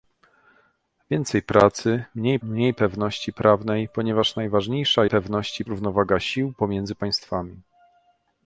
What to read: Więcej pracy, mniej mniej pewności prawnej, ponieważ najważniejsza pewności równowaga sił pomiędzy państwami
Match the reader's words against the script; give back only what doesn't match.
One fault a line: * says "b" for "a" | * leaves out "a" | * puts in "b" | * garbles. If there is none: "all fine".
all fine